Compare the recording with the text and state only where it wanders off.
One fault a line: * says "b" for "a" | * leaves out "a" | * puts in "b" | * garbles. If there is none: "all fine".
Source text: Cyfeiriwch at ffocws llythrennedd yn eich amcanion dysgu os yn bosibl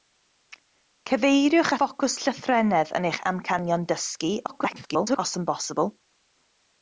* leaves out "at"
* garbles